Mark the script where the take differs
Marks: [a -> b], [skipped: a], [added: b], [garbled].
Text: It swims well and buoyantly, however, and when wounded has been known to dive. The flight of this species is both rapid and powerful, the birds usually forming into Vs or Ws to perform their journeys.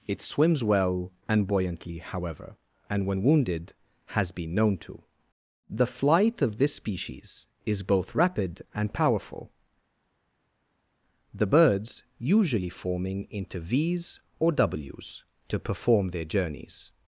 It swims well and buoyantly, however, and when wounded has been known to [skipped: dive.] The flight of this species is both rapid and powerful, the birds usually forming into Vs or Ws to perform their journeys.